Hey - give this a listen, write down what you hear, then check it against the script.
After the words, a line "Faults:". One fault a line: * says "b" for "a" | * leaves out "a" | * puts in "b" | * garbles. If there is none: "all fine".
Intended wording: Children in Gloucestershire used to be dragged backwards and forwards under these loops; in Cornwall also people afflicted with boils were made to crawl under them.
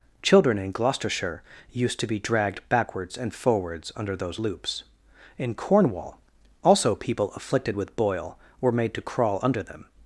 Children in Gloucestershire used to be dragged backwards and forwards under those loops; in Cornwall also people afflicted with boil were made to crawl under them.
Faults:
* says "those" for "these"
* says "boil" for "boils"